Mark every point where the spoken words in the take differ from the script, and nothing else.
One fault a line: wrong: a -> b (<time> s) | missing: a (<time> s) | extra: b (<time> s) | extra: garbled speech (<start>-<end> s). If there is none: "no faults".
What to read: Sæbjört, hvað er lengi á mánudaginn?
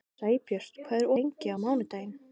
no faults